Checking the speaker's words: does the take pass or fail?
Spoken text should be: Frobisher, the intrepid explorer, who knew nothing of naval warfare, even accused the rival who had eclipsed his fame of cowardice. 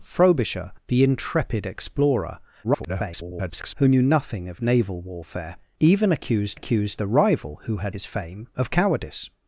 fail